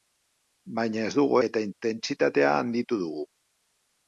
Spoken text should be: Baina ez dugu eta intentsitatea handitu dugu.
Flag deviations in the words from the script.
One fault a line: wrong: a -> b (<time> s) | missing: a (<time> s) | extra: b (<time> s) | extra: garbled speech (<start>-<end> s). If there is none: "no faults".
no faults